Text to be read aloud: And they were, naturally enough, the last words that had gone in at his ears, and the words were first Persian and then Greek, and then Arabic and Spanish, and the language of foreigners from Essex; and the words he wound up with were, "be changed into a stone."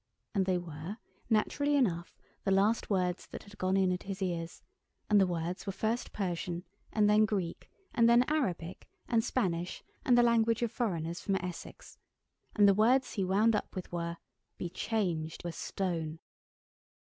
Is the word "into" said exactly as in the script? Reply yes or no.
no